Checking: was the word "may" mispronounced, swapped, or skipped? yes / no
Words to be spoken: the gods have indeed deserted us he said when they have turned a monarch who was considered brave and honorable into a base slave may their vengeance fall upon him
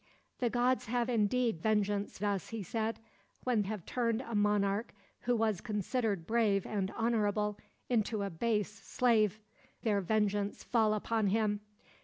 yes